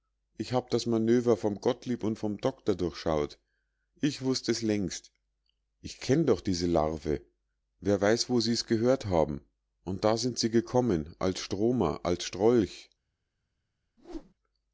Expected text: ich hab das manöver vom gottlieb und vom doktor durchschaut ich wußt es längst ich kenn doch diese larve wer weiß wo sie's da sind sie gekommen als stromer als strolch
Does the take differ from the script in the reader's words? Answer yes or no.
yes